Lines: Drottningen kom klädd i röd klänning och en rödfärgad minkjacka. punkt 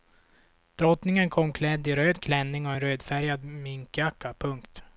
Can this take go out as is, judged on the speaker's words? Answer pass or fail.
pass